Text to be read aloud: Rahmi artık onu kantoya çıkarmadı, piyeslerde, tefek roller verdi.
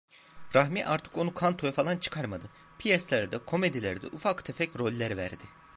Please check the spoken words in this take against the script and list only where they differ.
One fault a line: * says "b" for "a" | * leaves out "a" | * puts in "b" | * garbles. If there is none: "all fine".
* puts in "falan"
* puts in "komedilerde ufak"